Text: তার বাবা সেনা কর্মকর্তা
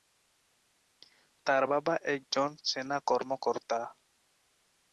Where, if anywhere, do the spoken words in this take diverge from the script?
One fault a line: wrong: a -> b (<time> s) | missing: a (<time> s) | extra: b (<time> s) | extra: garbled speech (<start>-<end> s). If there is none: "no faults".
extra: একজন (2.1 s)